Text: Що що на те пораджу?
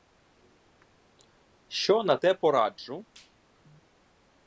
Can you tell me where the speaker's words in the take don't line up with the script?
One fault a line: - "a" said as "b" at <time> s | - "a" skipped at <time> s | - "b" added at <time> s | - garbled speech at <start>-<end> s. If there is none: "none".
- "що" skipped at 2.0 s